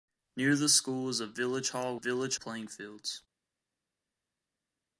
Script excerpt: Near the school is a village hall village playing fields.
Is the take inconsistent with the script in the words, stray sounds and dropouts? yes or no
no